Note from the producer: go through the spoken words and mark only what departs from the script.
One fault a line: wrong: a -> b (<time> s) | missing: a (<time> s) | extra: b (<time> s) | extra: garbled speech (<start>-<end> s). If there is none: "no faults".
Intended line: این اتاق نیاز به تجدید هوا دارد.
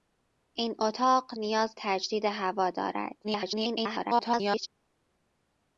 missing: به (1.8 s)
extra: garbled speech (3.2-4.7 s)